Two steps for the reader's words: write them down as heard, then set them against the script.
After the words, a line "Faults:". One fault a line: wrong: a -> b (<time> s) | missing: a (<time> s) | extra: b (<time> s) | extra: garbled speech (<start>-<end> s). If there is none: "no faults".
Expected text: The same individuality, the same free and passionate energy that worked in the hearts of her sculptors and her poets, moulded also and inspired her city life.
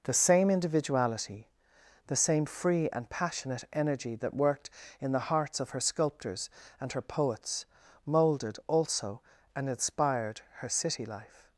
The same individuality, the same free and passionate energy that worked in the hearts of her sculptors and her poets, moulded also and inspired her city life.
Faults:
no faults